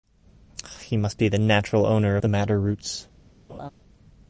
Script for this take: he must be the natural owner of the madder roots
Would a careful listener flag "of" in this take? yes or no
yes